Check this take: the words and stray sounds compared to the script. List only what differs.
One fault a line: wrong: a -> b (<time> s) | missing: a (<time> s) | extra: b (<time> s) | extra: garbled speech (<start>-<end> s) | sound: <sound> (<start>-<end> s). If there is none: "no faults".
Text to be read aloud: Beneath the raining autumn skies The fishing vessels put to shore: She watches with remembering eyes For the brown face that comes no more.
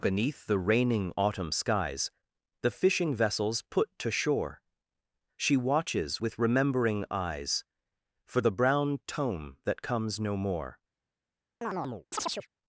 wrong: face -> tome (9.1 s)
sound: chirp (11.6-12.5 s)